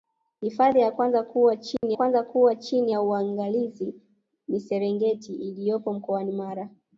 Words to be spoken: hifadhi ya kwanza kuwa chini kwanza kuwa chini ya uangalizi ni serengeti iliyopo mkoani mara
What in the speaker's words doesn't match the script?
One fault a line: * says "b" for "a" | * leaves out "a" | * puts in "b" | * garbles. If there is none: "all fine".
all fine